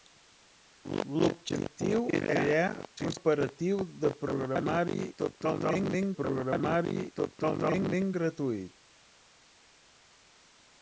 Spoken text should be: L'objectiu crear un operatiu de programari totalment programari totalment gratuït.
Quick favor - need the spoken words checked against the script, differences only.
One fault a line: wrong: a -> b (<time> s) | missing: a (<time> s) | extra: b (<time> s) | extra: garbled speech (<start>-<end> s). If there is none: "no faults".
no faults